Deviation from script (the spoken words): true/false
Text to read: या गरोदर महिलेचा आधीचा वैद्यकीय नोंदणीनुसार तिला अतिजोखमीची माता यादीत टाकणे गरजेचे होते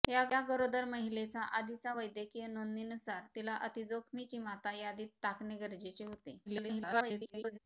true